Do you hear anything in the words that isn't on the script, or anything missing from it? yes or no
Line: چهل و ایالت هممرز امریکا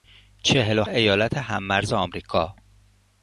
no